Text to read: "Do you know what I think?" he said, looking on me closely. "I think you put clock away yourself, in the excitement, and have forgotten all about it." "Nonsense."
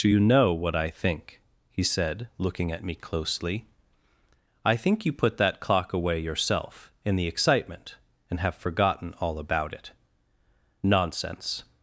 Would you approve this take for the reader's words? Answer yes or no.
no